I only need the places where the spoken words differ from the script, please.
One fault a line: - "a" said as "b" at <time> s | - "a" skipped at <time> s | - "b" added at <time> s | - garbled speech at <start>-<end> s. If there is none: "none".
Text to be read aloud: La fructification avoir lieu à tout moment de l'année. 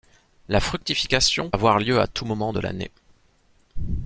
none